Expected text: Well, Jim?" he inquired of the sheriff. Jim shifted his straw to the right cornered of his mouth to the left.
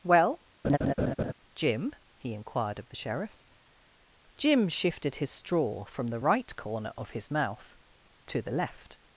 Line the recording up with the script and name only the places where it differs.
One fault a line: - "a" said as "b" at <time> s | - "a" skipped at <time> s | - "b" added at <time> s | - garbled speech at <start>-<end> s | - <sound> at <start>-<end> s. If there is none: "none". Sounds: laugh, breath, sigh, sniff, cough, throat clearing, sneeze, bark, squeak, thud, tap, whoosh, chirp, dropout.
- laugh at 0.6-1.3 s
- "to" said as "from" at 5.8 s
- "cornered" said as "corner" at 6.6 s